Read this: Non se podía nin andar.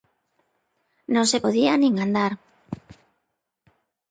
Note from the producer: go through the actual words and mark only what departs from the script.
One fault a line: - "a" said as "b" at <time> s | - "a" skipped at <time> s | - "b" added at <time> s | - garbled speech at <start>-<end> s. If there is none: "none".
none